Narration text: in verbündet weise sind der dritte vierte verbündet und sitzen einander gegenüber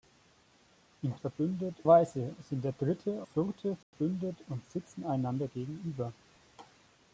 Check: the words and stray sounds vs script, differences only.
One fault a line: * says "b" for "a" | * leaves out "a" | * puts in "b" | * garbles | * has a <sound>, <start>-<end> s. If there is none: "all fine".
* has a dropout, 3.8-3.9 s